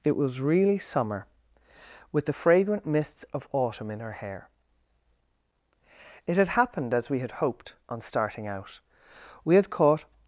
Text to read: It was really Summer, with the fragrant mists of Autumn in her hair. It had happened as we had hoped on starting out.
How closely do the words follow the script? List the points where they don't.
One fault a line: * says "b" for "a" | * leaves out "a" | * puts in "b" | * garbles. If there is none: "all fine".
* puts in "We had caught"